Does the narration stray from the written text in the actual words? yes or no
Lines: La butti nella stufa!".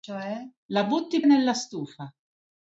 no